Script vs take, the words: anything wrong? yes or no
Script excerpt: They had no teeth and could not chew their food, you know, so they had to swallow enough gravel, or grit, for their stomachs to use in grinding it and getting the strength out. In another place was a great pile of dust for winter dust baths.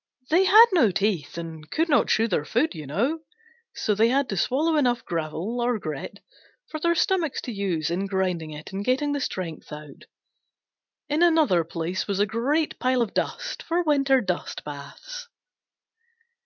no